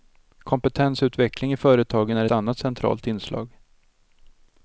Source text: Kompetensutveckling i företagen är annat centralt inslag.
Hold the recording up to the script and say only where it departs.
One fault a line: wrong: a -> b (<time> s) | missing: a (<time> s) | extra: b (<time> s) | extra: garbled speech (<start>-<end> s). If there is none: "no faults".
no faults